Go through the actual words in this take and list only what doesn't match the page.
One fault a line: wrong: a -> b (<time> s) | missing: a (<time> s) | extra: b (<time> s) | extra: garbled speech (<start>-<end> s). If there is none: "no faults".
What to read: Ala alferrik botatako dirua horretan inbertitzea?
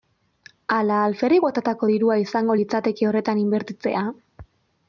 extra: izango litzateke (2.3 s)